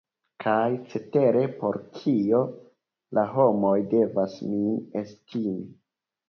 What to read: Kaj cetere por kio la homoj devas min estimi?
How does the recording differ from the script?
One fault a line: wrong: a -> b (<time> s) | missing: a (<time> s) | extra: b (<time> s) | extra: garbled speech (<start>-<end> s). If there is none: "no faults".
no faults